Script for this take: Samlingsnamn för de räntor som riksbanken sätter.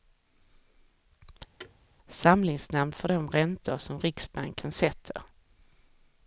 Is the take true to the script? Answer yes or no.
yes